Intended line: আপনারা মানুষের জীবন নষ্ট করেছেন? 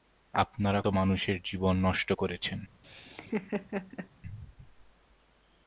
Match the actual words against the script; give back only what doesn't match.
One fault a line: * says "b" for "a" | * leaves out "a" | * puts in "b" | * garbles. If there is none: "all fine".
all fine